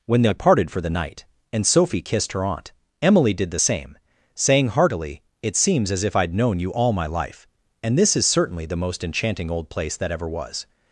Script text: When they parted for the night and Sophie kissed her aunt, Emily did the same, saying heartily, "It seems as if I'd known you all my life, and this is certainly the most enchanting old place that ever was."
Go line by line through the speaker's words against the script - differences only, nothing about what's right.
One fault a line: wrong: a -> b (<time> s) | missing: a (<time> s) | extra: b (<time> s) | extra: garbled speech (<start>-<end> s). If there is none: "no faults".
no faults